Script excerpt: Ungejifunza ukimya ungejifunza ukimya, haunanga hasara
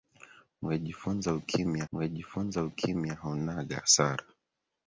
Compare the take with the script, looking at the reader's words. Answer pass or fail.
pass